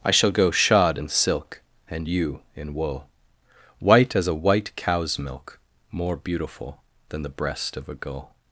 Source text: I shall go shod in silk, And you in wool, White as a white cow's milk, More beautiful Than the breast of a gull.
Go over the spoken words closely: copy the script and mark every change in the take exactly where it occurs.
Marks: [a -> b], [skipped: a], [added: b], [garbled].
I shall go shod in silk, And you in wool, White as a white cow's milk, More beautiful Than the breast of a gull.